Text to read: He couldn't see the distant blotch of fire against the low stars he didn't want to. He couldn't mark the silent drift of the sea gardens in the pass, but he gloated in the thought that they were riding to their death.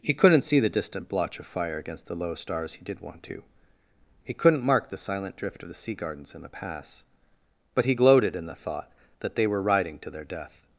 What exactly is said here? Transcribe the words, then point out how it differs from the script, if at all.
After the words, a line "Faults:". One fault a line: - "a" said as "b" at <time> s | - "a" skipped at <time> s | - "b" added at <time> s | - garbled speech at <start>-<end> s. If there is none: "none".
He couldn't see the distant blotch of fire against the low stars he did want to. He couldn't mark the silent drift of the sea gardens in the pass, but he gloated in the thought that they were riding to their death.
Faults:
- "didn't" said as "did" at 2.8 s